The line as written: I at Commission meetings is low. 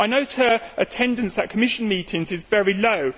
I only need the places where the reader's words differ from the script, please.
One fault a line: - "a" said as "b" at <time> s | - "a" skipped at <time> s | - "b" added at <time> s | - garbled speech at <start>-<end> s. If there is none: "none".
- "note her attendance" added at 0.1 s
- "very" added at 2.5 s